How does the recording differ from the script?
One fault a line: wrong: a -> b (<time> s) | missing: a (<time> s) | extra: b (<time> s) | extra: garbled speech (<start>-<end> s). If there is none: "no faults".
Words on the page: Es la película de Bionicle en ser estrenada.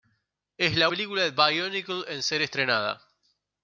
no faults